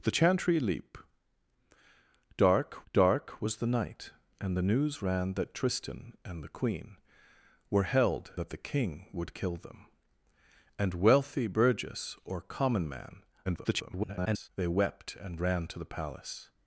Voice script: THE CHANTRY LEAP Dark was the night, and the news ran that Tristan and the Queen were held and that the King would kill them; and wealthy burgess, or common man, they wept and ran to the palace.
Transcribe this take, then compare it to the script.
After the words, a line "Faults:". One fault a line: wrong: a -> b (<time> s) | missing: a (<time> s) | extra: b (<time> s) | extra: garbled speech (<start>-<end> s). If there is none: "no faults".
THE CHANTRY LEAP Dark Dark was the night, and the news ran that Tristan and the Queen were held that the King would kill them; and wealthy burgess, or common man, [garbled] they wept and ran to the palace.
Faults:
extra: Dark (2.9 s)
missing: and (8.3 s)
extra: garbled speech (13.4-14.5 s)